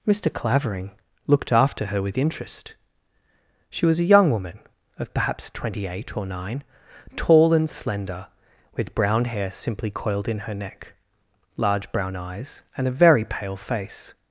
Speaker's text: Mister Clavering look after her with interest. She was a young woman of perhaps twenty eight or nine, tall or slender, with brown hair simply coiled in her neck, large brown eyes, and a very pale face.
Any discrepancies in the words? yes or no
yes